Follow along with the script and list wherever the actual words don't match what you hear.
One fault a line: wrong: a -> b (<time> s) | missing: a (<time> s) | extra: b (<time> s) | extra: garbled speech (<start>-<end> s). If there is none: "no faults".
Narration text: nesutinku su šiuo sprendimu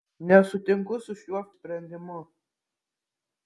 no faults